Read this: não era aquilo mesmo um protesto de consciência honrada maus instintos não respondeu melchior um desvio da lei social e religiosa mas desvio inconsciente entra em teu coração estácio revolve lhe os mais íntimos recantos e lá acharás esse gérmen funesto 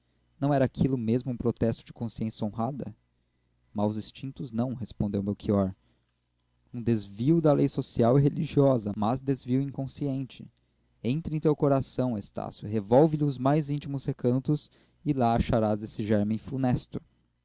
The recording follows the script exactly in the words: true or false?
true